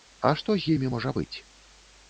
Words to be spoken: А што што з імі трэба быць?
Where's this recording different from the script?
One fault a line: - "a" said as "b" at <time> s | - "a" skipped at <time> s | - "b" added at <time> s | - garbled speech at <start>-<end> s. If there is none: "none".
- "што" skipped at 0.6 s
- "трэба" said as "можа" at 0.9 s